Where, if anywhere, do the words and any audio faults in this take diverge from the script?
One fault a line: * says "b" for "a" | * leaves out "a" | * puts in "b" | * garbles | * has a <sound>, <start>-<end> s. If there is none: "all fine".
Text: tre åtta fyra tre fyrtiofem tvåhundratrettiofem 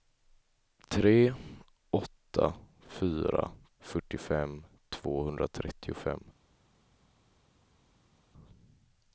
* leaves out "tre"